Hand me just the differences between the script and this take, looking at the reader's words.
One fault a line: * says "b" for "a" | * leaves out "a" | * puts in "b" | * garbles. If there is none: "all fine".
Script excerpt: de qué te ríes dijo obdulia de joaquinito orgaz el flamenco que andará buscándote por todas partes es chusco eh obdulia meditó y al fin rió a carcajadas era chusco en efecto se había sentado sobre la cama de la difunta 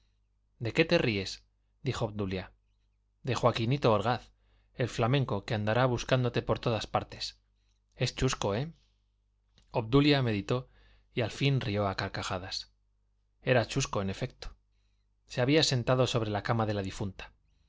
all fine